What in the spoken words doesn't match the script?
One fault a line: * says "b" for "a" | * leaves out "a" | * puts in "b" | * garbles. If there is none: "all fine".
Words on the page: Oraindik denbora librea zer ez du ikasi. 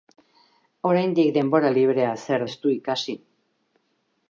all fine